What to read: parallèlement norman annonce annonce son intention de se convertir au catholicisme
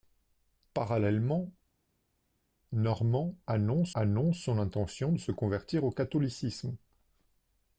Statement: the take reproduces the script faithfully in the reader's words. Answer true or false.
true